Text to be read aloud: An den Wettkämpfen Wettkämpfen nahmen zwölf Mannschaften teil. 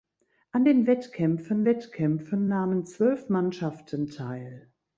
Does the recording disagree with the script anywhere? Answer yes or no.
no